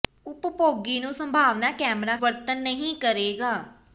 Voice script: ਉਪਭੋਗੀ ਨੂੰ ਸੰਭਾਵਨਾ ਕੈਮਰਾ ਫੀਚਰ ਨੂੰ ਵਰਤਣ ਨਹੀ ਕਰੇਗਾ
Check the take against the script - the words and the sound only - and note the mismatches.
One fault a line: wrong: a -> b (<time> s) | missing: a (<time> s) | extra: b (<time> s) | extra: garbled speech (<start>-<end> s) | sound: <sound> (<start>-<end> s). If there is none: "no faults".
missing: ਫੀਚਰ ਨੂੰ (2.1 s)